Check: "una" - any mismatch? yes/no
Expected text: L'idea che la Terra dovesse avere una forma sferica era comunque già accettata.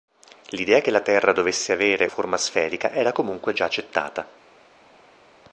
yes